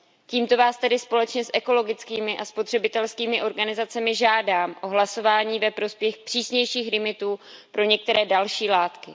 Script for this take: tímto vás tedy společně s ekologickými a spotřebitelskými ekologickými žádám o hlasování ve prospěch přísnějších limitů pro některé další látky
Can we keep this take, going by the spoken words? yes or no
no